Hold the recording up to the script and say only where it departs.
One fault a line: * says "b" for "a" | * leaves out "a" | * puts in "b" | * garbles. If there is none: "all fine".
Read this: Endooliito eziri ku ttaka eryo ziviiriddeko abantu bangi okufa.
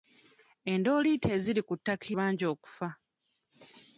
* leaves out "eryo ziviiriddeko abantu"